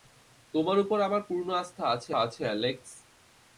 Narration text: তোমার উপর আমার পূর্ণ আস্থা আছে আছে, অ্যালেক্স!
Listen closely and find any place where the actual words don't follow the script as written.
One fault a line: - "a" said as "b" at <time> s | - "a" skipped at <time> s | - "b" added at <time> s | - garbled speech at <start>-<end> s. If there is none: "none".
none